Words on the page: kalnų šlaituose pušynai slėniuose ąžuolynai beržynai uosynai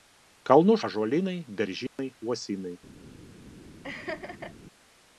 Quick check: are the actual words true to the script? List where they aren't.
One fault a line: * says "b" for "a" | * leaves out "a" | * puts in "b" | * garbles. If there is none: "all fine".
* leaves out "šlaituose pušynai slėniuose"